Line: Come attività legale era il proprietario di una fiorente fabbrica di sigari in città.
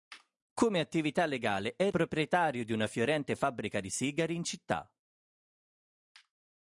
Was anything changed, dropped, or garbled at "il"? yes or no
yes